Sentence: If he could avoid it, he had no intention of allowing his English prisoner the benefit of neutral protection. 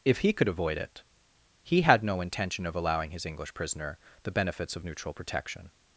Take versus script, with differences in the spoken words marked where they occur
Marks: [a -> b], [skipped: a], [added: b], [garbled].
If he could avoid it, he had no intention of allowing his English prisoner the [benefit -> benefits] of neutral protection.